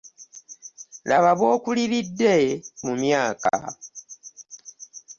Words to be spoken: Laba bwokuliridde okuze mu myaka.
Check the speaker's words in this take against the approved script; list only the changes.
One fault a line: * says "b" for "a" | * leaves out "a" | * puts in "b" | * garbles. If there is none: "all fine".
* leaves out "okuze"